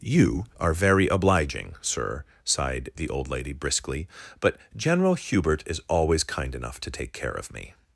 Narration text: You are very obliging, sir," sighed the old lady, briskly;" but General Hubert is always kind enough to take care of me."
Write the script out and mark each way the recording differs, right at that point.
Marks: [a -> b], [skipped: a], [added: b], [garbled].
You are very obliging, sir," sighed the old lady, briskly;" but General Hubert is always kind enough to take care of me."